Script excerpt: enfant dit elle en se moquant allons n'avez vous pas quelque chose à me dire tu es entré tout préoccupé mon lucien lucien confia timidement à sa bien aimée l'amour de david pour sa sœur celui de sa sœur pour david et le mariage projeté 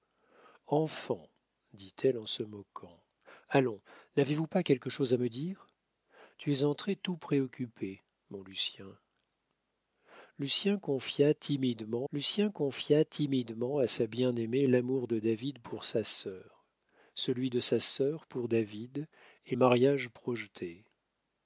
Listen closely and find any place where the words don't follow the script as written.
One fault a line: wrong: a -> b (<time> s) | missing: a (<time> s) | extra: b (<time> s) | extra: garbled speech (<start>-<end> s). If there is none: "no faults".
extra: lucien confia timidement (12.1 s)
missing: le (19.5 s)